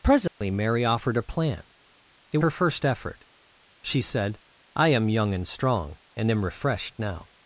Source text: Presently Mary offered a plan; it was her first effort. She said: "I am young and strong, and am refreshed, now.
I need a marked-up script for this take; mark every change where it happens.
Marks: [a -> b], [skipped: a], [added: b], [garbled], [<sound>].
Presently [dropout] Mary offered a plan; it [skipped: was] her first effort. She said: "I am young and strong, and am refreshed, now.